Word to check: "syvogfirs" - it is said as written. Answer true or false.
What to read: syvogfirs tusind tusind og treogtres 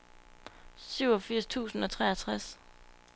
true